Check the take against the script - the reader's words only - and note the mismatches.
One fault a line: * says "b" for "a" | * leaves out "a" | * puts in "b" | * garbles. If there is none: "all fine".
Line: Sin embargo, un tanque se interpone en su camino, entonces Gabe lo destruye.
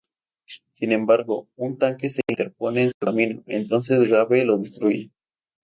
all fine